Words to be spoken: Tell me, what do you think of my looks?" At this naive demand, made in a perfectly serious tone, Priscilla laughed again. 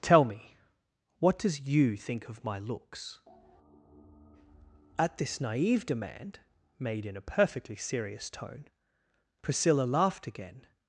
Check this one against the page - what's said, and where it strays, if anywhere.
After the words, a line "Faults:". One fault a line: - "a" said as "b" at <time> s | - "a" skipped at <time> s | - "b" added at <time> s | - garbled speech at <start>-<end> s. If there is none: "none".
Tell me, what does you think of my looks?" At this naive demand, made in a perfectly serious tone, Priscilla laughed again.
Faults:
- "do" said as "does" at 1.4 s